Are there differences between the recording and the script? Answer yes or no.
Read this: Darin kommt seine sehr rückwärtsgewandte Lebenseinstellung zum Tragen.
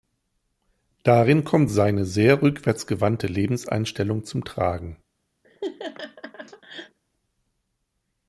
no